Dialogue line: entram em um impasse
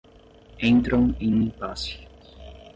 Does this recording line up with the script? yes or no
yes